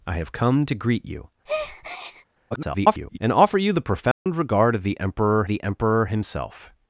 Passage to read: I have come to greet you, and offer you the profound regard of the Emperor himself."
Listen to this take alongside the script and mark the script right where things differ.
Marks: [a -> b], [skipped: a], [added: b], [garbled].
I have come to greet you, [garbled] and offer you the profound regard of the Emperor [added: the Emperor] himself."